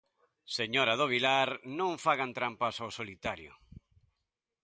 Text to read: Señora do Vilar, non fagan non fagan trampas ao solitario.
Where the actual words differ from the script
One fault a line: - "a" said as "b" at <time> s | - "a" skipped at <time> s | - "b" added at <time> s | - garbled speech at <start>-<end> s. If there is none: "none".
- "non fagan" skipped at 2.3 s